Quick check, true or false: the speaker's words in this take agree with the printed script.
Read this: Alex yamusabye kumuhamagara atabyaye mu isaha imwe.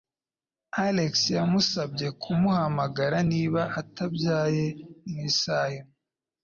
false